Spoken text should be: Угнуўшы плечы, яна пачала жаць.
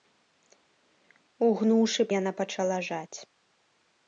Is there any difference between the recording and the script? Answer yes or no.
yes